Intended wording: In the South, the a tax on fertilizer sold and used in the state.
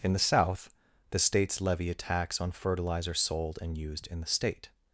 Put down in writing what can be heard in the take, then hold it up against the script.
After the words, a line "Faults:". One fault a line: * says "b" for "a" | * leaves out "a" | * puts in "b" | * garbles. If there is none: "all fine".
In the South, the states levy a tax on fertilizer sold and used in the state.
Faults:
* puts in "states levy"